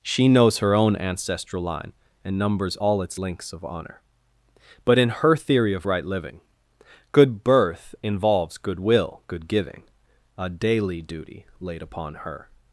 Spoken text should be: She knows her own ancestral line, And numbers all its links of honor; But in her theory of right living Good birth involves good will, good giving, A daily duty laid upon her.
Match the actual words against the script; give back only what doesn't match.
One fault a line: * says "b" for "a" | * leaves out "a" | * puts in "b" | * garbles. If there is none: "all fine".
all fine